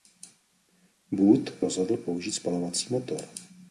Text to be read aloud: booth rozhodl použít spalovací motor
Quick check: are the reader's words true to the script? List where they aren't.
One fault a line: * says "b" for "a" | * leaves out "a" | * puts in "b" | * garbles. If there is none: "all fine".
all fine